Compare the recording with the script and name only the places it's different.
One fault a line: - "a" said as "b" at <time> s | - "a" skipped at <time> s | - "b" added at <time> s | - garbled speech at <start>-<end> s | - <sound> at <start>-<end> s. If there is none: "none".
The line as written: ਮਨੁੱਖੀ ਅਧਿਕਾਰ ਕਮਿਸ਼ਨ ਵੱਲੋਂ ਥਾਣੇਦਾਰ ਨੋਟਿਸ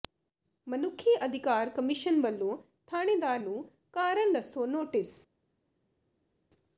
- "ਨੂੰ ਕਾਰਨ ਦੱਸੋ" added at 3.4 s